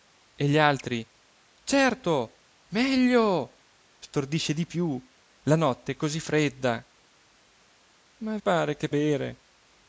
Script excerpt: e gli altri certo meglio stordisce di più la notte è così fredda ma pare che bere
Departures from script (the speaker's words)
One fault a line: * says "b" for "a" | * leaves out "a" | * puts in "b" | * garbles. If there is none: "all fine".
all fine